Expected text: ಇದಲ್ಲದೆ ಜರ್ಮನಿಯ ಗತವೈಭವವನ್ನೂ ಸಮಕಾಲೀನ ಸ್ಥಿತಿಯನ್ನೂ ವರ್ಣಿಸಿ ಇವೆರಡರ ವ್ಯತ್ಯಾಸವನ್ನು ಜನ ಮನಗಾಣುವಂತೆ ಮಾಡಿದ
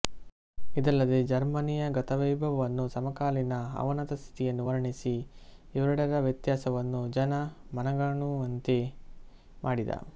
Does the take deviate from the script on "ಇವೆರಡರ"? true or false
false